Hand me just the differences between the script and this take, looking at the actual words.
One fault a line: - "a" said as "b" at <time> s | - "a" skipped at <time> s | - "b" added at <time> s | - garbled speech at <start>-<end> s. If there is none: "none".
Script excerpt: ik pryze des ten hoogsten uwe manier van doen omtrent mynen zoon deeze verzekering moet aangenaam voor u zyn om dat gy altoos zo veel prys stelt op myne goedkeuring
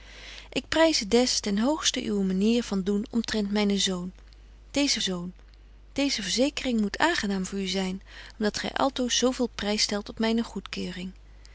- "zoon deeze" added at 5.0 s